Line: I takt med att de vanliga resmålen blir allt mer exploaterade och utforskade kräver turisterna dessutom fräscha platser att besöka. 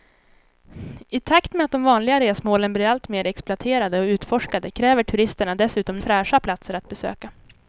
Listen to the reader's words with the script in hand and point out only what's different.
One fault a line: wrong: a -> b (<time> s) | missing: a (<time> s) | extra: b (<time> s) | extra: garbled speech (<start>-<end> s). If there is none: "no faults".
no faults